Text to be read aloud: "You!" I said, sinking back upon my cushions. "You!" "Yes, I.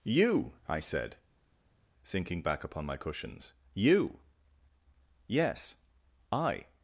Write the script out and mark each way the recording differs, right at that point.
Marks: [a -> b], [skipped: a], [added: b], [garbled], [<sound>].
"You!" I said, sinking back upon my cushions. "You!" "Yes, I.